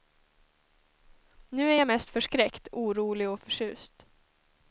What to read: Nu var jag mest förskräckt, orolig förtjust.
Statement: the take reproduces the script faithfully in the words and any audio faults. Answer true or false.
false